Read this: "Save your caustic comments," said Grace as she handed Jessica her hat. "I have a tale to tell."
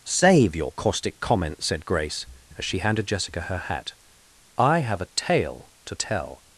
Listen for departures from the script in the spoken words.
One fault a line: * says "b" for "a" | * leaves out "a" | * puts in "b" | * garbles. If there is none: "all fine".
all fine